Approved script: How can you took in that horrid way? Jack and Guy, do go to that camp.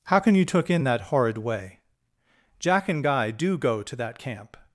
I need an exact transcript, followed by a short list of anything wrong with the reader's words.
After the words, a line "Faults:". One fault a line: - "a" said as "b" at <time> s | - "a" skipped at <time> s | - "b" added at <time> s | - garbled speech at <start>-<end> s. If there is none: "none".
How can you took in that horrid way? Jack and Guy, do go to that camp.
Faults:
none